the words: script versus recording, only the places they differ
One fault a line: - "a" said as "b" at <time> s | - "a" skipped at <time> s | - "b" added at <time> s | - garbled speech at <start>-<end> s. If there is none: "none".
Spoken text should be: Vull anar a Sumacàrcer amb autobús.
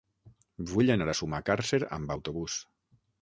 none